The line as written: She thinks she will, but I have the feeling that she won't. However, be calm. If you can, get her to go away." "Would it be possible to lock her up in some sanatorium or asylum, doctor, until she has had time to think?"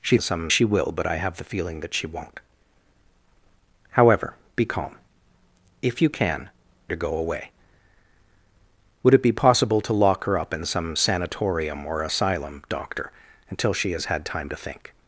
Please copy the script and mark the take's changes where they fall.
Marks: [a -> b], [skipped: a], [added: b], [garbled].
She [thinks -> some] she will, but I have the feeling that she won't. However, be calm. If you can, [skipped: get her] to go away." "Would it be possible to lock her up in some sanatorium or asylum, doctor, until she has had time to think?"